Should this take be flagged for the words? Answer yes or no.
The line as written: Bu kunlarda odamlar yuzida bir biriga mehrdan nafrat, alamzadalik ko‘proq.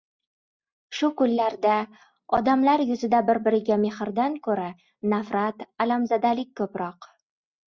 yes